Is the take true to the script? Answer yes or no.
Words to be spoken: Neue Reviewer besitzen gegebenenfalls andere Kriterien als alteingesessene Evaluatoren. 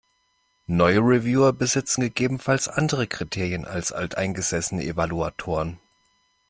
yes